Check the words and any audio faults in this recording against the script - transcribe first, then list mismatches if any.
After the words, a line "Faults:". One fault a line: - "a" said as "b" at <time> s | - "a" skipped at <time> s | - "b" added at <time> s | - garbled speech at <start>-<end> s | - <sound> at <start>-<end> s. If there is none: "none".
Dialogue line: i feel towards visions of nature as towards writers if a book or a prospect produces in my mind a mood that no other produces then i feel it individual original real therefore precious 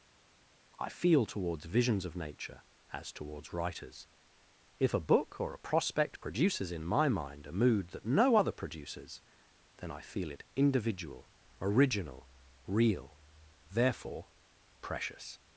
i feel towards visions of nature as towards writers if a book or a prospect produces in my mind a mood that no other produces then i feel it individual original real therefore precious
Faults:
none